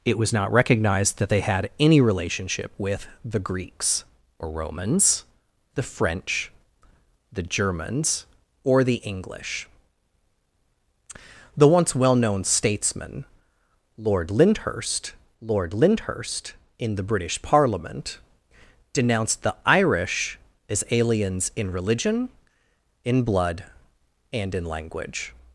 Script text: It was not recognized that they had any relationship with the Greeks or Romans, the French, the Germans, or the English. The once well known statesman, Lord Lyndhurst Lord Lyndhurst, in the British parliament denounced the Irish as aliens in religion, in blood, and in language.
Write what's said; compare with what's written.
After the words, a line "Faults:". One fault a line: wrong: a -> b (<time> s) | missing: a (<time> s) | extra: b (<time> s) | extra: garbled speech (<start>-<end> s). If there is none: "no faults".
It was not recognized that they had any relationship with the Greeks or Romans, the French, the Germans, or the English. The once well known statesman, Lord Lyndhurst Lord Lyndhurst, in the British parliament denounced the Irish as aliens in religion, in blood, and in language.
Faults:
no faults